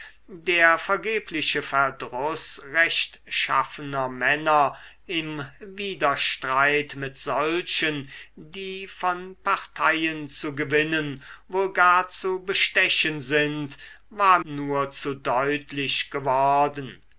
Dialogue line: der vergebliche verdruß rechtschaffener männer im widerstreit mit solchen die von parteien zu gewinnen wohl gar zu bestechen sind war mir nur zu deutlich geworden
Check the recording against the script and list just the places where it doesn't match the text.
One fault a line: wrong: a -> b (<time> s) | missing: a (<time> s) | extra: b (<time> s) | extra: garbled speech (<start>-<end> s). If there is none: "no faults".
missing: mir (14.4 s)